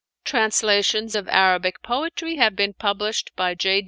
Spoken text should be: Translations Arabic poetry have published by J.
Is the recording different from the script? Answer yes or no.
yes